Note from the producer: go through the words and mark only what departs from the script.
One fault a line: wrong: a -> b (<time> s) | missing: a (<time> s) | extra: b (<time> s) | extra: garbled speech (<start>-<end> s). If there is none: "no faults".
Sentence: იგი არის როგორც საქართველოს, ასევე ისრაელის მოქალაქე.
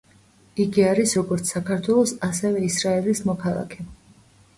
no faults